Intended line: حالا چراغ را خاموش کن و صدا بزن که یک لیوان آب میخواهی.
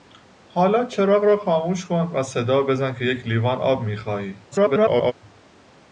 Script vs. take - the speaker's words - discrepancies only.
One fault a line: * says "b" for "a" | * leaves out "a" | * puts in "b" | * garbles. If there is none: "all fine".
* garbles